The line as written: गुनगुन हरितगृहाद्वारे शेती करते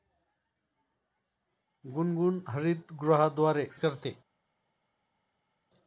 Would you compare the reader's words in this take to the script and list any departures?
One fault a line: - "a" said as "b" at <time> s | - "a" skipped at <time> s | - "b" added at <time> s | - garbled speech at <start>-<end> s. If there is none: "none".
- "शेती" skipped at 3.7 s